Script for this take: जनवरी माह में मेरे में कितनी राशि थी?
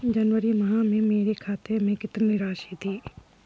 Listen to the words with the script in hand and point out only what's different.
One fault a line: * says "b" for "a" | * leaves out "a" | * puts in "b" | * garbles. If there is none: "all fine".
* puts in "खाते"